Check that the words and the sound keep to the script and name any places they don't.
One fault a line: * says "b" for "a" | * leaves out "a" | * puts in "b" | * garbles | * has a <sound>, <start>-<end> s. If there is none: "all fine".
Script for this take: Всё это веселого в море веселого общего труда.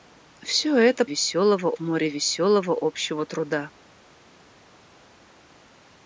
all fine